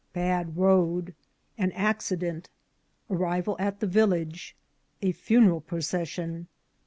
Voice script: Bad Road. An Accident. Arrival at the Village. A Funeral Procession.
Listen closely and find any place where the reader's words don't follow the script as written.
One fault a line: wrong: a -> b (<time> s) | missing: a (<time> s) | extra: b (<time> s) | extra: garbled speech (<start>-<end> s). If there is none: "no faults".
no faults